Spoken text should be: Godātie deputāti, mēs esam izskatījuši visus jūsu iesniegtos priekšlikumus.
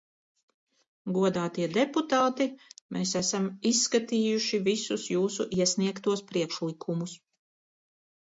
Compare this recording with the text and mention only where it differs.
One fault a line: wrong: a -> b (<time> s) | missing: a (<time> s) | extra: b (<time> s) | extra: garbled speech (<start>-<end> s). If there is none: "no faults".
no faults